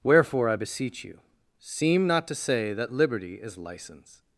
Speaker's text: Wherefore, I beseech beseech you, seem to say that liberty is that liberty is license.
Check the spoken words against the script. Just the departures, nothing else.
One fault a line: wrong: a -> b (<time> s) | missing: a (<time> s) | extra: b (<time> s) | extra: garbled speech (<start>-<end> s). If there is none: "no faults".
missing: beseech (1.0 s)
extra: not (2.1 s)
missing: that liberty is (3.6 s)